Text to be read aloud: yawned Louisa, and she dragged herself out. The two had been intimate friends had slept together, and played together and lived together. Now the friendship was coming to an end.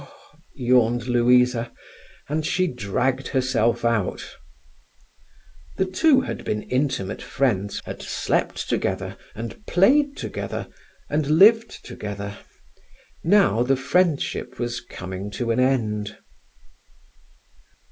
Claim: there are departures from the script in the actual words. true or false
false